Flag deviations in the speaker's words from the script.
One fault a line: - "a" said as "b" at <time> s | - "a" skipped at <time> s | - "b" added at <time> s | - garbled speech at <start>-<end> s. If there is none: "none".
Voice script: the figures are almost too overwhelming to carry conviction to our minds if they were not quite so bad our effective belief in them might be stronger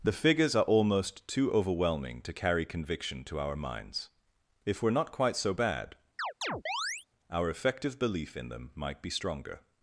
- "they" skipped at 4.8 s